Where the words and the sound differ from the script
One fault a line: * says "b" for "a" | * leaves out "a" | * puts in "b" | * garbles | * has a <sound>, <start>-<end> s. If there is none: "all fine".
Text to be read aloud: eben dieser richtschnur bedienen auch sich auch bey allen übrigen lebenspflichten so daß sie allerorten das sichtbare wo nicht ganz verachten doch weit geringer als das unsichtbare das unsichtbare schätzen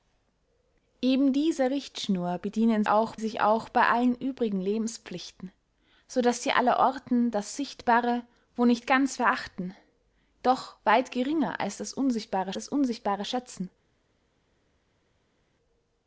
all fine